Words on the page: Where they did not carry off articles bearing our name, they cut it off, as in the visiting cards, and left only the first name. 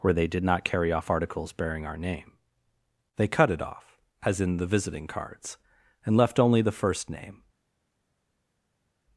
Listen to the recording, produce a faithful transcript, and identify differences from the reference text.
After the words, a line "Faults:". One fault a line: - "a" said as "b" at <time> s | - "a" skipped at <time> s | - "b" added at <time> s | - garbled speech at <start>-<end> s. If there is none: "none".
Where they did not carry off articles bearing our name, they cut it off, as in the visiting cards, and left only the first name.
Faults:
none